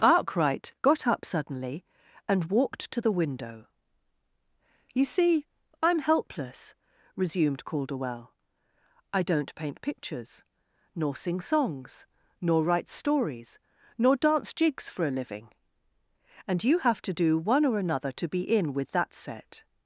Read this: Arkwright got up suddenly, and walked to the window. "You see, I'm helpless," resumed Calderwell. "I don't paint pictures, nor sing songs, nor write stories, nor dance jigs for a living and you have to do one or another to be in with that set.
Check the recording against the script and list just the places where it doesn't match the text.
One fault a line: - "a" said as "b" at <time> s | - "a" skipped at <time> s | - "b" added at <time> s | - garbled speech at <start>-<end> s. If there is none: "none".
none